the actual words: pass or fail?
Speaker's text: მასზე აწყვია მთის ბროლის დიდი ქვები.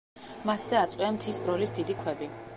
pass